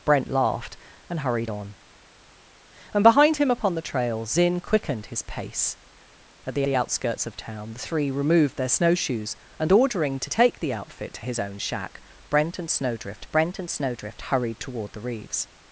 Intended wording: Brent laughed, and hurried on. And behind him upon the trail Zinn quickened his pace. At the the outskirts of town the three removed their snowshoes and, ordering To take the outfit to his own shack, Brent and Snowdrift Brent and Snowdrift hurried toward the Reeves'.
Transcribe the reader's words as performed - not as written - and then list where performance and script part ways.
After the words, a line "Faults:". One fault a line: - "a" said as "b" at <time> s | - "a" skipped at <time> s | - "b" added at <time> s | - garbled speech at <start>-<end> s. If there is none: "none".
Brent laughed, and hurried on. And behind him upon the trail Zinn quickened his pace. At the the outskirts of town the three removed their snowshoes and, ordering To take the outfit to his own shack, Brent and Snowdrift Brent and Snowdrift hurried toward the Reeves'.
Faults:
none